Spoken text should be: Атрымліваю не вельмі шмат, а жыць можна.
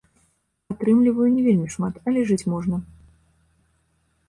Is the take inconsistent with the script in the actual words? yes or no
yes